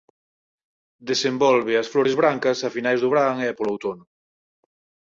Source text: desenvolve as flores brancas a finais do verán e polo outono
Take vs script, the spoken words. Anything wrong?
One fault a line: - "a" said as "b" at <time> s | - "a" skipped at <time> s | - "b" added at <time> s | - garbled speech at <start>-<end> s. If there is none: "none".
none